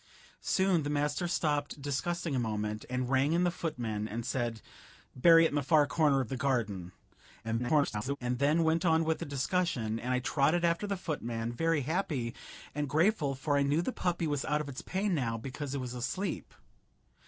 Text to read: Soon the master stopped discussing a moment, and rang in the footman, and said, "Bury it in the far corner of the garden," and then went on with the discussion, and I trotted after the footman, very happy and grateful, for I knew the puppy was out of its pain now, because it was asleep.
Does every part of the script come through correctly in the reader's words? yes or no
no